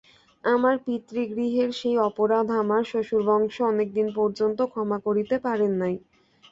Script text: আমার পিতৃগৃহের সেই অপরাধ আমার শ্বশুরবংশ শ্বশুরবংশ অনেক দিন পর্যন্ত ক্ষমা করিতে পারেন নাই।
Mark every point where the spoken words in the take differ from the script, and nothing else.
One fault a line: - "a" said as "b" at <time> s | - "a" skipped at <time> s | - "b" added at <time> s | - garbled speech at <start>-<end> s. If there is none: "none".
- "শ্বশুরবংশ" skipped at 3.5 s